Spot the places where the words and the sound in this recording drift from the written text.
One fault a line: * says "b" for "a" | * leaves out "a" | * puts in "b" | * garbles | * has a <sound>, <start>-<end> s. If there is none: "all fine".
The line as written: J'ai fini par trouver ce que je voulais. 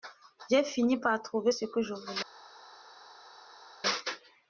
all fine